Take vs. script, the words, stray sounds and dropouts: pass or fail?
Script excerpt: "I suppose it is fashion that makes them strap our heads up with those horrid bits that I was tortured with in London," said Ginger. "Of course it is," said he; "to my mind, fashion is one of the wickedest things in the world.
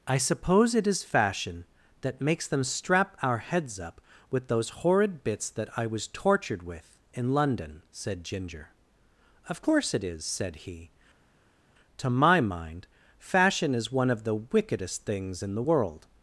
pass